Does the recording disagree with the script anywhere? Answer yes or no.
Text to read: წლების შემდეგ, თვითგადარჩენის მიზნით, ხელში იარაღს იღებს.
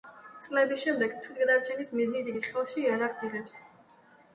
yes